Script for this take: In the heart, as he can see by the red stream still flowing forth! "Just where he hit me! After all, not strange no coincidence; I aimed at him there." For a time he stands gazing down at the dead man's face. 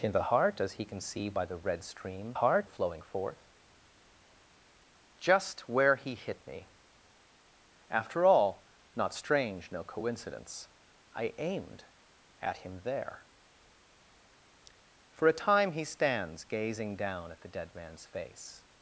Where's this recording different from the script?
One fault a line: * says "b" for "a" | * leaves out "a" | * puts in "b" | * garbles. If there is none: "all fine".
* says "heart" for "still"